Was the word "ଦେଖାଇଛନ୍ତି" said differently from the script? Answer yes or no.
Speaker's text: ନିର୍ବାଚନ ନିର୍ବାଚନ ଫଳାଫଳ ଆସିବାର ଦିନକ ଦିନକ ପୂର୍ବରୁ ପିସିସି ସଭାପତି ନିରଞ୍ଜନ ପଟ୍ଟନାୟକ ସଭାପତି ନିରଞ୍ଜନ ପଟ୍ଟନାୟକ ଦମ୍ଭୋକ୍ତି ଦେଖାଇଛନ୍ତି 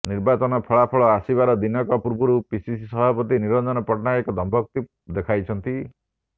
no